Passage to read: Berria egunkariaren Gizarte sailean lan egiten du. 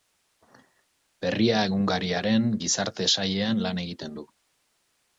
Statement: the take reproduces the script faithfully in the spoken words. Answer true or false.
true